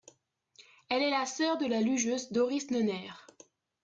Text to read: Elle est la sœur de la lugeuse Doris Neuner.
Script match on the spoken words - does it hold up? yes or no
yes